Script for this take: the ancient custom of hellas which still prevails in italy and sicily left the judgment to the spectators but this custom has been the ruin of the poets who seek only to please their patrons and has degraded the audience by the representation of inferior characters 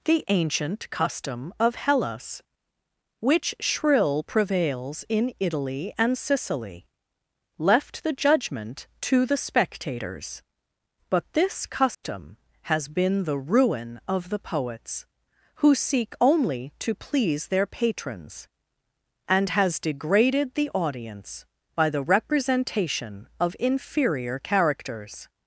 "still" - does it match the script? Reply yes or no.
no